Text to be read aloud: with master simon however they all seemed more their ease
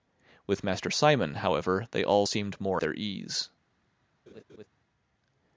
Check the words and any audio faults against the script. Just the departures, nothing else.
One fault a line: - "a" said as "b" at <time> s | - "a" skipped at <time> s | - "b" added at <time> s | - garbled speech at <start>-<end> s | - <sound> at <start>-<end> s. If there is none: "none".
- laugh at 4.3-4.7 s